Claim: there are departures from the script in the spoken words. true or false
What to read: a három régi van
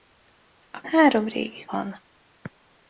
false